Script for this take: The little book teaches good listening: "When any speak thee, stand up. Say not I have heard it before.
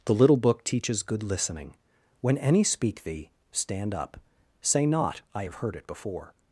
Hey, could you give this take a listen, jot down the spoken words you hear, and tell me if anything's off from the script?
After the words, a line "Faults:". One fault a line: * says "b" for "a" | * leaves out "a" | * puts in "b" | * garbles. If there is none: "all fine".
The little book teaches good listening: "When any speak thee, stand up. Say not I have heard it before.
Faults:
all fine